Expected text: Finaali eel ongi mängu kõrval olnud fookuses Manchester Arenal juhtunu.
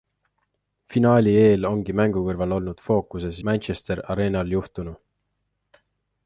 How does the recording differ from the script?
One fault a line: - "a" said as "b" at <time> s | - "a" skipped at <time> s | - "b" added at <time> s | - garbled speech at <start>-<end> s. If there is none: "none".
none